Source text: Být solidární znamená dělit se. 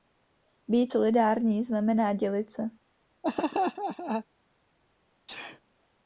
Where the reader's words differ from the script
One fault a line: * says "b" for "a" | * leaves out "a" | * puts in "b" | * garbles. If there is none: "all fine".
all fine